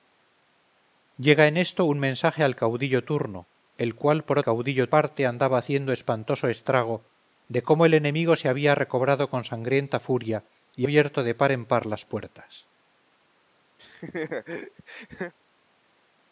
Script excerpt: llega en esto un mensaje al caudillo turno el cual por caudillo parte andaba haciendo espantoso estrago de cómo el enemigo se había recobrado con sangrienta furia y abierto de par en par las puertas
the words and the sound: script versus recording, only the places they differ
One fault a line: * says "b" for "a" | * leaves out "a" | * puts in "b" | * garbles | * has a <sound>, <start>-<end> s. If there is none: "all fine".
* has a laugh, 13.8-15.3 s